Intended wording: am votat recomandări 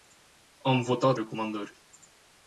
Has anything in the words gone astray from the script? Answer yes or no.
no